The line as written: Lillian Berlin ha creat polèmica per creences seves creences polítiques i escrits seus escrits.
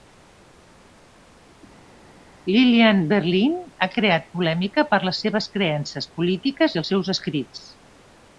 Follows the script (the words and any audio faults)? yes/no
no